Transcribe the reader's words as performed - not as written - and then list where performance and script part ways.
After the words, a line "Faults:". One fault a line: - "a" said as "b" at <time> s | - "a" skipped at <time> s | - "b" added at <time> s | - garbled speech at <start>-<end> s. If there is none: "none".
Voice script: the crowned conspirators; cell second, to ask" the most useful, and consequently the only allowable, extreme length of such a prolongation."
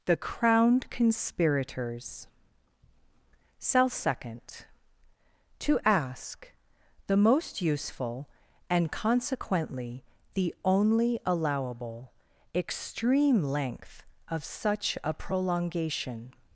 the crowned conspirators; cell second, to ask" the most useful, and consequently the only allowable, extreme length of such a prolongation."
Faults:
none